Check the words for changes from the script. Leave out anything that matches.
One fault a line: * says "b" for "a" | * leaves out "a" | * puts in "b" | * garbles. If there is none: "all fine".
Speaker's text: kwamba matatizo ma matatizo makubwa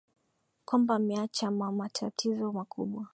* says "ameacha" for "matatizo"